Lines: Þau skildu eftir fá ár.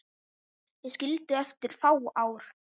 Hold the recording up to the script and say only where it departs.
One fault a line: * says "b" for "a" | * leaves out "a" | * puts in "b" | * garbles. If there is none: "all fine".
all fine